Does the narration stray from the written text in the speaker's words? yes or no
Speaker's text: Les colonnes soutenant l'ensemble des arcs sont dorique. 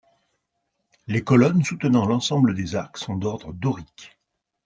yes